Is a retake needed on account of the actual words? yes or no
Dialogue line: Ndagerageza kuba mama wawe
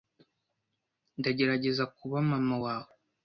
no